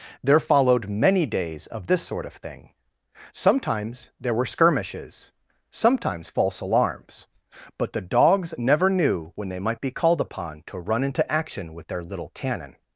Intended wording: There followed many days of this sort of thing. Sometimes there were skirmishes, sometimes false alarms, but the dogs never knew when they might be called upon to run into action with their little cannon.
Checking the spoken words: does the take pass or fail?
pass